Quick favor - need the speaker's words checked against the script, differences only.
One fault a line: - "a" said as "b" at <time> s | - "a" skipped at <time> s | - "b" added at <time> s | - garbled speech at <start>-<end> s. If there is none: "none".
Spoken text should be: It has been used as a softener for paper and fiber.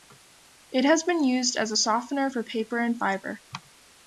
none